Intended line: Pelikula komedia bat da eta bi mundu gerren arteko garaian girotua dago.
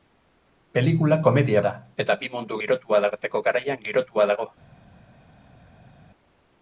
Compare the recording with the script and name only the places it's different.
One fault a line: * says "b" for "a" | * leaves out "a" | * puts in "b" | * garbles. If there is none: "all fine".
* leaves out "bat"
* says "girotua" for "gerren"